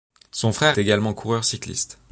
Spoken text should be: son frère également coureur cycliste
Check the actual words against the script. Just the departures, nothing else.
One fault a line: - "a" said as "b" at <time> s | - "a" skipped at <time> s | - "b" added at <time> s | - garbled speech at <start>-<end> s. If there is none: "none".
none